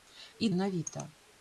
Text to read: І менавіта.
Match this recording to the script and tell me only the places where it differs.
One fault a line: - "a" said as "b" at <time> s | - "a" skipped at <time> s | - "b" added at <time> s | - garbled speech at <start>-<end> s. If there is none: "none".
none